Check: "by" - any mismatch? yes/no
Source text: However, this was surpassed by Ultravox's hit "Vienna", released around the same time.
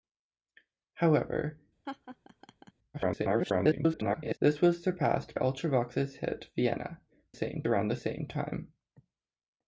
yes